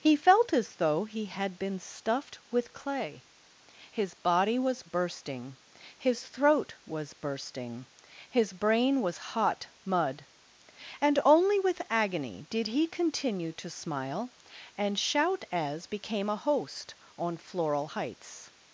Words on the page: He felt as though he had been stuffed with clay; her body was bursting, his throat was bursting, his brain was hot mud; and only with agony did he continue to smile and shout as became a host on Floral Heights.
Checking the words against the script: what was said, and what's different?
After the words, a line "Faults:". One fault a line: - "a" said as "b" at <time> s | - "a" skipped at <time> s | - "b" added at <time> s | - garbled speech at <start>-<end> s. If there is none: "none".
He felt as though he had been stuffed with clay; his body was bursting, his throat was bursting, his brain was hot mud; and only with agony did he continue to smile and shout as became a host on Floral Heights.
Faults:
- "her" said as "his" at 3.9 s